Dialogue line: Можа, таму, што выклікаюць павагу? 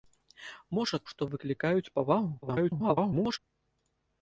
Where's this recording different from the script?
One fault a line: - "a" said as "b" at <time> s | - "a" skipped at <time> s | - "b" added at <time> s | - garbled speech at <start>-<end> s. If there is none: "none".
- "таму" skipped at 1.0 s
- garbled speech at 2.4-3.4 s